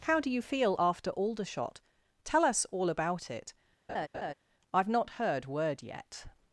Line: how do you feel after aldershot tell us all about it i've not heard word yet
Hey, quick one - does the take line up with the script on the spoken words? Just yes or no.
yes